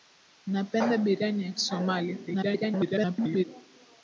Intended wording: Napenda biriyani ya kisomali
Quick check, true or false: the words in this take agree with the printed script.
false